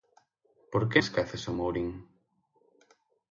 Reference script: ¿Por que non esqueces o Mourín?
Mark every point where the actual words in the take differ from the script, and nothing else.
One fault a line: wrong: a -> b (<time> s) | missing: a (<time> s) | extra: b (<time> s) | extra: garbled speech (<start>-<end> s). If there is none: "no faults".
missing: non (1.0 s)